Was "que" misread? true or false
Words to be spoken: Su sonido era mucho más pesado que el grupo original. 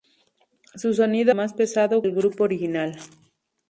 true